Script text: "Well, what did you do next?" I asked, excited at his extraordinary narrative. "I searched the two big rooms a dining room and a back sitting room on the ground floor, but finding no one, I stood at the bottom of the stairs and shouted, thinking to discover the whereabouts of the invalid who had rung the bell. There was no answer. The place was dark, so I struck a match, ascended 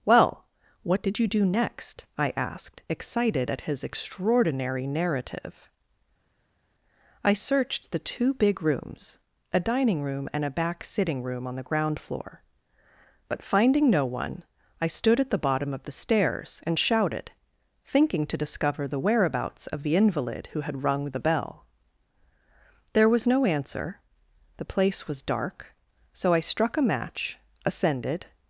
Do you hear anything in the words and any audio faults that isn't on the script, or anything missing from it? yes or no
no